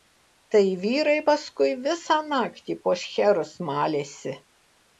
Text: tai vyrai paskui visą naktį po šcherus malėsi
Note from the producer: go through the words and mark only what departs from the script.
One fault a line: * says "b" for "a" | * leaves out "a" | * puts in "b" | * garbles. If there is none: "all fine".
all fine